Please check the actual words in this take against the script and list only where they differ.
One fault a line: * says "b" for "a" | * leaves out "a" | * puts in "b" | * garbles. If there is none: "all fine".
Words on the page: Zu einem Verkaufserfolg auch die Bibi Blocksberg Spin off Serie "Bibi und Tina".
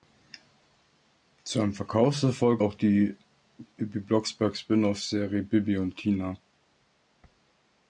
all fine